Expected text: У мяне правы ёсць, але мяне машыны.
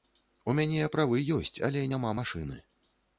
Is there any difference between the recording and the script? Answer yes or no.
yes